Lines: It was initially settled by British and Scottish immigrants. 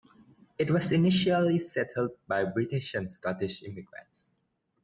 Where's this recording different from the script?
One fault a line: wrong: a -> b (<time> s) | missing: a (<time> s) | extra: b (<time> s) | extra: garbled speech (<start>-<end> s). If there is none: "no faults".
no faults